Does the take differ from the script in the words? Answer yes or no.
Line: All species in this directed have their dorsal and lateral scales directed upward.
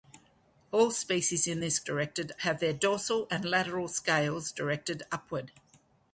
no